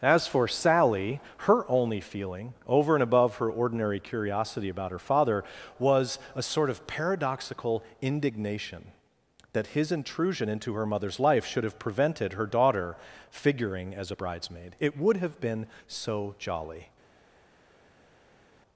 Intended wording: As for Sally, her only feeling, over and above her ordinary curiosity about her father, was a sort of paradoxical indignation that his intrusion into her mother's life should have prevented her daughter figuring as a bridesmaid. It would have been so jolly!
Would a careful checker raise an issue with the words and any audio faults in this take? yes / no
no